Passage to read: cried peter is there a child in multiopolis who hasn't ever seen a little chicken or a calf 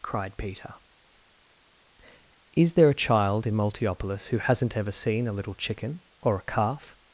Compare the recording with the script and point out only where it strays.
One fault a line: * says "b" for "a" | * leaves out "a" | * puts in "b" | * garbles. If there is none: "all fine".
all fine